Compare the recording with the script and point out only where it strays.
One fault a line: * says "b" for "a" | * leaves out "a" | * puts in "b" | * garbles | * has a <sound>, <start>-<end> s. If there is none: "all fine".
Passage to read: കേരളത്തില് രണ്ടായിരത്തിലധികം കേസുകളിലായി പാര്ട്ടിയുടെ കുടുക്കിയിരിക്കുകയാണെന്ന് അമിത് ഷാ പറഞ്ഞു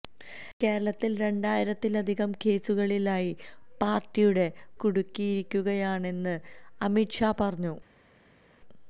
all fine